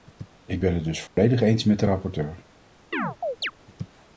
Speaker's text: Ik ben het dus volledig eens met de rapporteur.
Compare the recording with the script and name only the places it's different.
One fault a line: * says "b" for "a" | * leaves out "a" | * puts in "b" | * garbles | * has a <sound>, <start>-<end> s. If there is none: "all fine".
* has a dropout, 1.1-1.2 s
* has a chirp, 2.9-3.5 s